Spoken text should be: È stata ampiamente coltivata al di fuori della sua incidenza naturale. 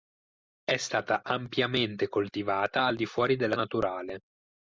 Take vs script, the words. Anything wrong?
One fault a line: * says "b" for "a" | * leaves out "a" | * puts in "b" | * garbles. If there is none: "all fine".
* leaves out "sua incidenza"